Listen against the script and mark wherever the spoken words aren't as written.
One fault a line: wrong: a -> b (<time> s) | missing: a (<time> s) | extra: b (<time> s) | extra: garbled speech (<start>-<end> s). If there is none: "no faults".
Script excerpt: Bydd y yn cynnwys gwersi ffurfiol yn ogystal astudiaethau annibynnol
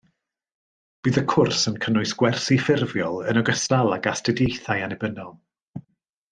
extra: cwrs (1.3 s)
extra: ag (4.0 s)